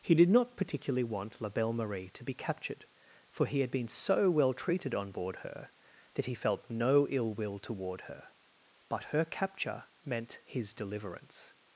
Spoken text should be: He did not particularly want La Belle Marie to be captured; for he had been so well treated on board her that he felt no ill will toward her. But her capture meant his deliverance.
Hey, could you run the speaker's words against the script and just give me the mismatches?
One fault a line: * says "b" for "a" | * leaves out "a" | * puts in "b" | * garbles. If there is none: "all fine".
all fine